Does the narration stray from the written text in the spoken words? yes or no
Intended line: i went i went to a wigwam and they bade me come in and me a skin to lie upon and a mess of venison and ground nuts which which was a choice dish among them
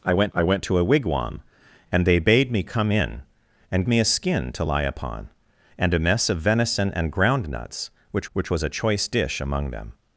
no